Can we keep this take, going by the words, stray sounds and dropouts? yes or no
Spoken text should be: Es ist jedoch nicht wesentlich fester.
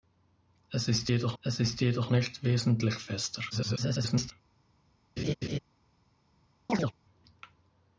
no